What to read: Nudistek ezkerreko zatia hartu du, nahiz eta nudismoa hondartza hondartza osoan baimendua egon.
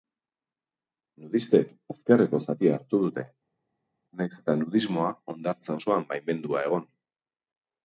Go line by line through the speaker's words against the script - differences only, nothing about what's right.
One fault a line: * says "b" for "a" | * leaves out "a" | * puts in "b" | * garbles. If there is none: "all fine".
* says "dute" for "du"
* leaves out "hondartza"